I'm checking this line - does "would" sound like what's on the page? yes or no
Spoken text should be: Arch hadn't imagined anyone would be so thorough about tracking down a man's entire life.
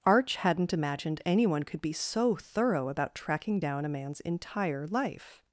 no